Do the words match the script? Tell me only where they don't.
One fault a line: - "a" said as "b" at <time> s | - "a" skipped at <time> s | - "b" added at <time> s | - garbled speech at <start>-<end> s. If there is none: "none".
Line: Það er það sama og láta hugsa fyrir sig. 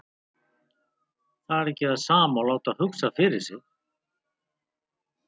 - "ekki" added at 1.7 s